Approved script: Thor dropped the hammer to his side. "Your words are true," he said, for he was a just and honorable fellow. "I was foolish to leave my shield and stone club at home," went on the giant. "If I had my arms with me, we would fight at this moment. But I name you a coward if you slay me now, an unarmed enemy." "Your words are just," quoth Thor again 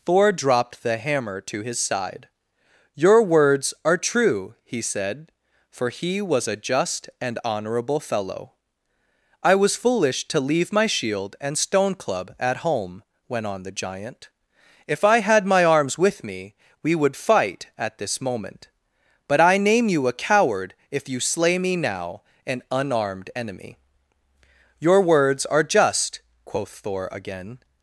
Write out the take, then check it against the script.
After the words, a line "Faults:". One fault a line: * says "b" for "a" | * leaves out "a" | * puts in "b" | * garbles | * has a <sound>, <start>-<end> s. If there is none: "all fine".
Thor dropped the hammer to his side. "Your words are true," he said, for he was a just and honorable fellow. "I was foolish to leave my shield and stone club at home," went on the giant. "If I had my arms with me, we would fight at this moment. But I name you a coward if you slay me now, an unarmed enemy." "Your words are just," quoth Thor again
Faults:
all fine